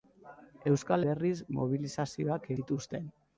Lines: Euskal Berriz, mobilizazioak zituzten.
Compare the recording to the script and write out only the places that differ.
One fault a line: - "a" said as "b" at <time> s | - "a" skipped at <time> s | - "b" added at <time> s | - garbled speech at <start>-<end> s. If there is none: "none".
none